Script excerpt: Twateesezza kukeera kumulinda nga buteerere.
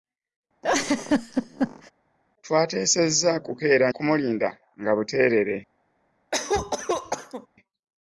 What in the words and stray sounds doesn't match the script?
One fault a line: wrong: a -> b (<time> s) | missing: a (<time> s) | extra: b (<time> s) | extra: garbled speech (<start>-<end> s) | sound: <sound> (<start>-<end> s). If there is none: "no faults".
sound: laugh (0.6-1.9 s)
sound: cough (6.3-7.5 s)